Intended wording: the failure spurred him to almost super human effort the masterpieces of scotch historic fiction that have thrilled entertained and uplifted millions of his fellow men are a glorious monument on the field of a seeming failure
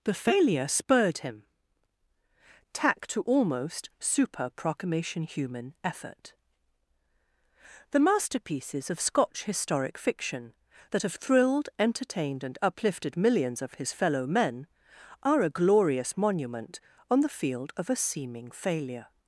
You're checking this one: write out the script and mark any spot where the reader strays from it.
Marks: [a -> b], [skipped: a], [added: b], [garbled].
the failure spurred him [added: tack] to almost super [added: proclamation] human effort the masterpieces of scotch historic fiction that have thrilled entertained and uplifted millions of his fellow men are a glorious monument on the field of a seeming failure